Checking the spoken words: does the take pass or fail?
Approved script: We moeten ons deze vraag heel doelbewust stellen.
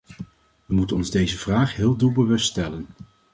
pass